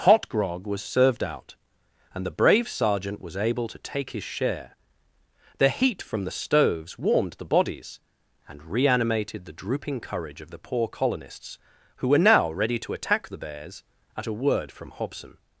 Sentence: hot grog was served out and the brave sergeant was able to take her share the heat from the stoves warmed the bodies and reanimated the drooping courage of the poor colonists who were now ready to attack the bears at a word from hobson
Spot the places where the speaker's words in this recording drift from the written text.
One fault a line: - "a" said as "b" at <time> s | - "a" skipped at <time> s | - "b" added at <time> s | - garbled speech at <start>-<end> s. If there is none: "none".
- "her" said as "his" at 4.1 s